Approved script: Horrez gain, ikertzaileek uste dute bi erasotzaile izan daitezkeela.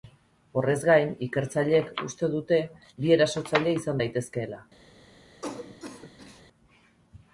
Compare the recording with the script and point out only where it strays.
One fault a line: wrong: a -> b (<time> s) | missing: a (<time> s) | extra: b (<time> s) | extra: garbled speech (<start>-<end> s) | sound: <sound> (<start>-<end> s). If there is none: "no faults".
sound: cough (5.4-6.4 s)